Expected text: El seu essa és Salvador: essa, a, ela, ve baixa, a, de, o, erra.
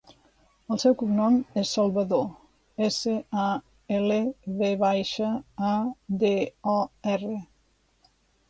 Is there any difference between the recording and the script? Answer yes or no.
yes